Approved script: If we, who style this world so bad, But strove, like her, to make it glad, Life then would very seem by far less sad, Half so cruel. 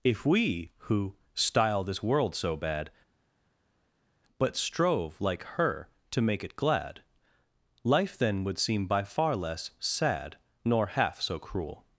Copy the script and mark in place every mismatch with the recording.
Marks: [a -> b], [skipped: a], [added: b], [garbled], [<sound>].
If we, who style this world so bad, But strove, like her, to make it glad, Life then would [skipped: very] seem by far less sad, [added: Nor] Half so cruel.